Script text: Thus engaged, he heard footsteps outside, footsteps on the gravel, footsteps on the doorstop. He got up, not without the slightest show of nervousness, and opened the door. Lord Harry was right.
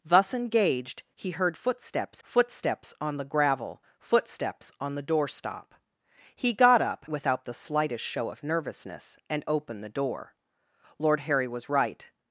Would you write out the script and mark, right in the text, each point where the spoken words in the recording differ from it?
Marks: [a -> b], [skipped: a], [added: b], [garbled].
Thus engaged, he heard footsteps [skipped: outside,] footsteps on the gravel, footsteps on the doorstop. He got up, [skipped: not] without the slightest show of nervousness, and opened the door. Lord Harry was right.